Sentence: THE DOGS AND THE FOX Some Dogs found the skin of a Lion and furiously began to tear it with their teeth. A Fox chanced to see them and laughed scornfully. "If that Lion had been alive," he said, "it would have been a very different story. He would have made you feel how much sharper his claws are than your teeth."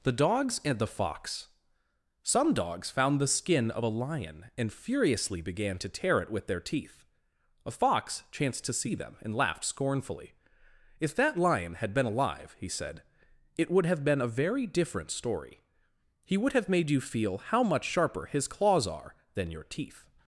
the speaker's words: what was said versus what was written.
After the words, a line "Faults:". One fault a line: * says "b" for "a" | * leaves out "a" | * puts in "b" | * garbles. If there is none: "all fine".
THE DOGS AND THE FOX Some Dogs found the skin of a Lion and furiously began to tear it with their teeth. A Fox chanced to see them and laughed scornfully. "If that Lion had been alive," he said, "it would have been a very different story. He would have made you feel how much sharper his claws are than your teeth."
Faults:
all fine